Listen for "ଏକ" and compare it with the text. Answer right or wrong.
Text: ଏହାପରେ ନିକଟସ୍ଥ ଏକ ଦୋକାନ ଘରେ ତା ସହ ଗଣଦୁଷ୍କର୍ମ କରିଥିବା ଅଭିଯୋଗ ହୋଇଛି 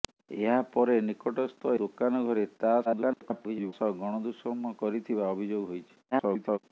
wrong